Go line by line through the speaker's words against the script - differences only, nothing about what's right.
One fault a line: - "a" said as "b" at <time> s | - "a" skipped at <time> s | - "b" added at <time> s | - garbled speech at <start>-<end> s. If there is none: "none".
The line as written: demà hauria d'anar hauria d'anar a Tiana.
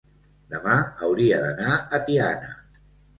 - "hauria d'anar" skipped at 1.7 s